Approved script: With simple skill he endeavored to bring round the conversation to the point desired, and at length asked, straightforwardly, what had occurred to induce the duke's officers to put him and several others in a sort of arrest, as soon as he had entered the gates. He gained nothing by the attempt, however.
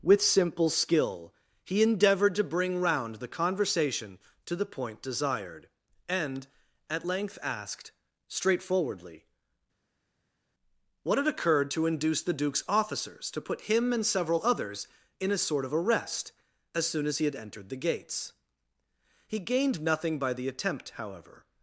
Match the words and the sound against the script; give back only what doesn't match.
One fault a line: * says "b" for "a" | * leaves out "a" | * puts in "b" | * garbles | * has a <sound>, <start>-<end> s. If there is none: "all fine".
all fine